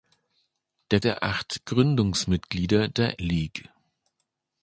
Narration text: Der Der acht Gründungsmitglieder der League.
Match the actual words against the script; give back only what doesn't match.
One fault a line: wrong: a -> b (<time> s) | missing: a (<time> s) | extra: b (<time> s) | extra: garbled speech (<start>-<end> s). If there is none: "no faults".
no faults